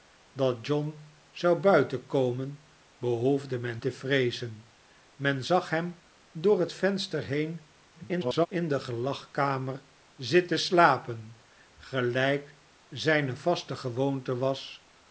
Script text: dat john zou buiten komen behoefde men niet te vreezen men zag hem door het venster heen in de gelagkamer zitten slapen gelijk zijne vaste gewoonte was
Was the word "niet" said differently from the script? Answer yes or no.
yes